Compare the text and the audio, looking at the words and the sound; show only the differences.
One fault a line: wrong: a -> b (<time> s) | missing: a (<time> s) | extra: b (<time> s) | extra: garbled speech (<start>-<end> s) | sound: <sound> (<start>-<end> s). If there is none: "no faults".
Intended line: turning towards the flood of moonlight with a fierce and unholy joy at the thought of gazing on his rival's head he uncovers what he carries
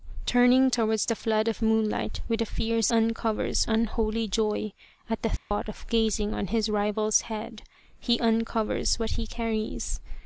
wrong: and -> uncovers (2.9 s)
sound: dropout (5.4-5.5 s)